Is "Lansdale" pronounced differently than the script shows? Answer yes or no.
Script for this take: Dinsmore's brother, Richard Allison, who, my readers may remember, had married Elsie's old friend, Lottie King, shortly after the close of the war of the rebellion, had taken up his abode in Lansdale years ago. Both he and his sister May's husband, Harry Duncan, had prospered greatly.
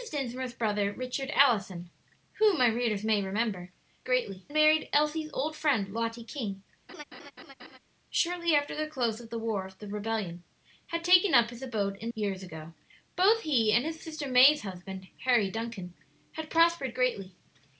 yes